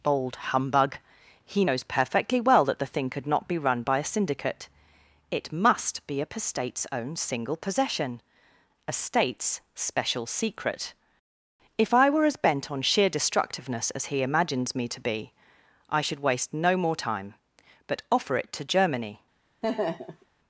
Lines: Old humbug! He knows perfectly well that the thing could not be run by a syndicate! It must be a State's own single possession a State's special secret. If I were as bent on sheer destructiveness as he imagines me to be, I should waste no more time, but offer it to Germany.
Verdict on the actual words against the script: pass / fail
fail